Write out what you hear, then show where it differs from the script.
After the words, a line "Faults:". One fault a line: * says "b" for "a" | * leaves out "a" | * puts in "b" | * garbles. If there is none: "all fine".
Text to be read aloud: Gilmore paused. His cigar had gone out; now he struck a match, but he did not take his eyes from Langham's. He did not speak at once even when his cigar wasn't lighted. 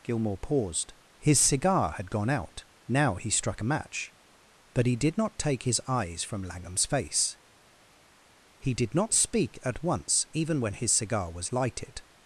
Gilmore paused. His cigar had gone out; now he struck a match, but he did not take his eyes from Langham's face. He did not speak at once even when his cigar was lighted.
Faults:
* puts in "face"
* says "was" for "wasn't"